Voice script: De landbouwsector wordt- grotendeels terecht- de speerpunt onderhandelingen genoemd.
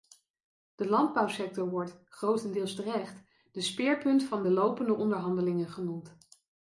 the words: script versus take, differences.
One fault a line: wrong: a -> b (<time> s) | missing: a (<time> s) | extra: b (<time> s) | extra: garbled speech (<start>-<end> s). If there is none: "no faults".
extra: van de lopende (4.2 s)